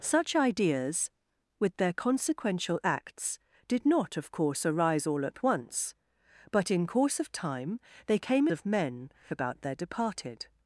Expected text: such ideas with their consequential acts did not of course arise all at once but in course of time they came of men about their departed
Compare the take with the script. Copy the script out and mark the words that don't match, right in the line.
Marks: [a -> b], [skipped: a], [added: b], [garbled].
such ideas with their consequential acts did not of course arise all at once but in course of time they came of men about their departed